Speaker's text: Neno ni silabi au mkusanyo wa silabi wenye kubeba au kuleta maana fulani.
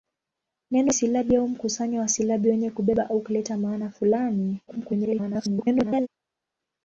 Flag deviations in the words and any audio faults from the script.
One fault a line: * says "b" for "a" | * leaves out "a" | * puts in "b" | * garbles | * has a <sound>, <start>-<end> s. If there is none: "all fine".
* leaves out "ni"
* garbles